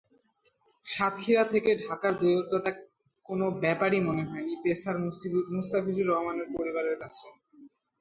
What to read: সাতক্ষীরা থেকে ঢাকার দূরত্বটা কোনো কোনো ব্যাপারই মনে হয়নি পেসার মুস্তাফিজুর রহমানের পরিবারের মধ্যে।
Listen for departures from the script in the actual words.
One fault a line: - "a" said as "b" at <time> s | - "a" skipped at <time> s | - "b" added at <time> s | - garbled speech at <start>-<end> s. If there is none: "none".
- "কোনো" skipped at 3.5 s
- "মধ্যে" said as "কাছে" at 7.0 s